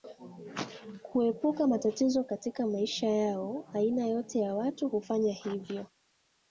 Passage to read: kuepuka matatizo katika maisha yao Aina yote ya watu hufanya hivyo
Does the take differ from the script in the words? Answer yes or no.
no